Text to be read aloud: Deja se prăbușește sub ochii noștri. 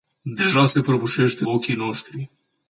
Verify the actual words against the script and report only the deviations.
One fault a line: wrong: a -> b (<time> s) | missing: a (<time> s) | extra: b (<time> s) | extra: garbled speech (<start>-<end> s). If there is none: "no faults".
missing: sub (1.4 s)